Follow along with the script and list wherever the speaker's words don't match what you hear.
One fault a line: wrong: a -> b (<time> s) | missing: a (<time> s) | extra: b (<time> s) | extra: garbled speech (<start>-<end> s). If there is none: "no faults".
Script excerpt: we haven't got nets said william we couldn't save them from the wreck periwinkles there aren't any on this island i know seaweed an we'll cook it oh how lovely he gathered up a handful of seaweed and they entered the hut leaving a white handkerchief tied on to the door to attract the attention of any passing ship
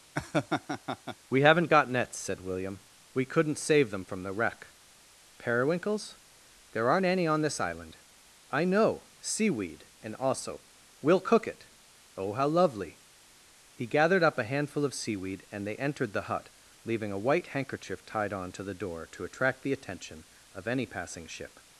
wrong: an -> and also (10.0 s)